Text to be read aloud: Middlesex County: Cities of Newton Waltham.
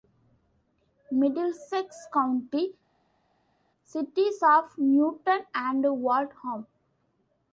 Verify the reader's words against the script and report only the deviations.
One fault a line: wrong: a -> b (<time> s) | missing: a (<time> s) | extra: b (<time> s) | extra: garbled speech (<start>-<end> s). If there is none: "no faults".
extra: and (5.5 s)